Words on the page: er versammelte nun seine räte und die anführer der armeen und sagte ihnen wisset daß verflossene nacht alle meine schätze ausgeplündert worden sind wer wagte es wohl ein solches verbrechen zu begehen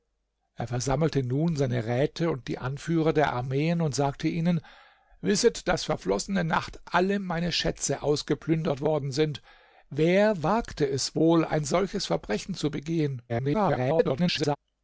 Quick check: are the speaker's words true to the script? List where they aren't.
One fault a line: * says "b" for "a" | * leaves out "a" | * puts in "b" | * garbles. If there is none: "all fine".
* garbles